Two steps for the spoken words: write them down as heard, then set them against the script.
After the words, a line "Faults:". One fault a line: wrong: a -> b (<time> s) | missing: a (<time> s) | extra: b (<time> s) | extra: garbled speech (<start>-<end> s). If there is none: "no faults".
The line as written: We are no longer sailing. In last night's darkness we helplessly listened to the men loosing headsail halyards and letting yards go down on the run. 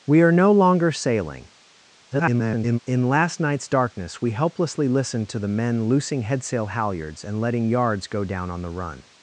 We are no longer sailing. [garbled] In last night's darkness we helplessly listened to the men loosing headsail halyards and letting yards go down on the run.
Faults:
extra: garbled speech (2.1-2.8 s)